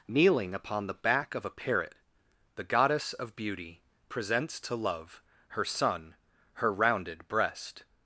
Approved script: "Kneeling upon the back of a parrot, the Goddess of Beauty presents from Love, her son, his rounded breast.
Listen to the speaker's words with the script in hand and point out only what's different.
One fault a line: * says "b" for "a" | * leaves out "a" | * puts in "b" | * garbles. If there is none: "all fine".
* says "to" for "from"
* says "her" for "his"